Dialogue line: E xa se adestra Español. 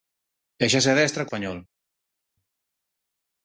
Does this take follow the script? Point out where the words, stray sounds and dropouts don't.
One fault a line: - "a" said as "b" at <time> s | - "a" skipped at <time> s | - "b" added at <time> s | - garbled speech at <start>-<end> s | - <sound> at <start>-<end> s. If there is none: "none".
none